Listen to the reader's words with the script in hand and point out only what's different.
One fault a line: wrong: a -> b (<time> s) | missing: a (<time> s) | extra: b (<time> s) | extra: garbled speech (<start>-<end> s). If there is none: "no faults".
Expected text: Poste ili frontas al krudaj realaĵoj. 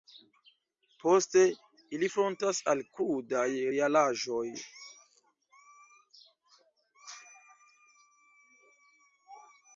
no faults